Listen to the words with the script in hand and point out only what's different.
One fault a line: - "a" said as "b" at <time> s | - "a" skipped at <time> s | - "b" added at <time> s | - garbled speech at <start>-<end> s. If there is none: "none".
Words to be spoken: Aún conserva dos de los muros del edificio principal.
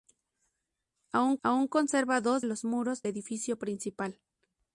- "aún" added at 1.4 s
- "de" skipped at 2.5 s
- "del" skipped at 3.0 s